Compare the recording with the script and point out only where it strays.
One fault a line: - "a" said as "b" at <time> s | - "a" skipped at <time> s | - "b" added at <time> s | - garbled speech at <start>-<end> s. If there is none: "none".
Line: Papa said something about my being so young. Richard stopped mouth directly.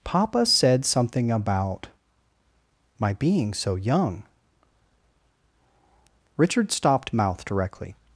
none